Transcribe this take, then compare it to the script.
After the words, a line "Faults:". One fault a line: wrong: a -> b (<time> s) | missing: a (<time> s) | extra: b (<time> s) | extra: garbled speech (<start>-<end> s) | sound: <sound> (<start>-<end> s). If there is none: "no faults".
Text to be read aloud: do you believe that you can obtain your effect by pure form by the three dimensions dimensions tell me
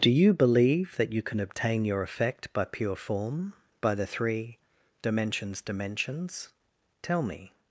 do you believe that you can obtain your effect by pure form by the three dimensions dimensions tell me
Faults:
no faults